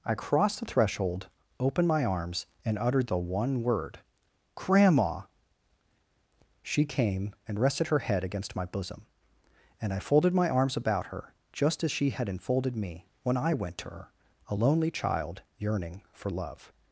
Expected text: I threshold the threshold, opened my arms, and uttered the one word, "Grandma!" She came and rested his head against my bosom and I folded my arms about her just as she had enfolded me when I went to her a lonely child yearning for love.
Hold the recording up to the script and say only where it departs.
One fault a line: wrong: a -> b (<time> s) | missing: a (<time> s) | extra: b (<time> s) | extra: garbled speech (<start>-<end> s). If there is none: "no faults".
wrong: threshold -> crossed (0.1 s)
wrong: his -> her (7.9 s)